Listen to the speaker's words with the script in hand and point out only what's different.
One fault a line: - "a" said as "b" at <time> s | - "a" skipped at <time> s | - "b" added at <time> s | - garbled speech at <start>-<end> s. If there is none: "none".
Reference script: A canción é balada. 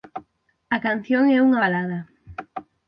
- "unha" added at 1.5 s